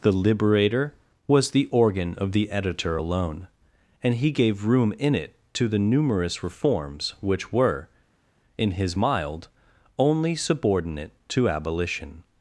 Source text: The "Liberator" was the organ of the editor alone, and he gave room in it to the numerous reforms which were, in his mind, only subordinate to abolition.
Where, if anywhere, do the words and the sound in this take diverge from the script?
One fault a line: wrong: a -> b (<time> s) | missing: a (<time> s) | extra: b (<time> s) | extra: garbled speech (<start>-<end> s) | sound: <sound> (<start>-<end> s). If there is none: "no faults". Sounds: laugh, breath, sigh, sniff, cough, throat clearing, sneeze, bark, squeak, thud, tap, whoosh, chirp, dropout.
wrong: mind -> mild (8.9 s)